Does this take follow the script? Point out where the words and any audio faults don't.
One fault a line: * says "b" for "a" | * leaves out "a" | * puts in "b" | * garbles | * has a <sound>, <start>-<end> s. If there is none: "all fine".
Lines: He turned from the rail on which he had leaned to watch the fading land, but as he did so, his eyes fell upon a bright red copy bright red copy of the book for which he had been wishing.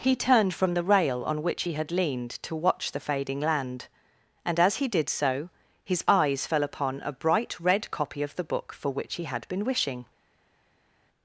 * says "and" for "but"
* leaves out "bright red copy"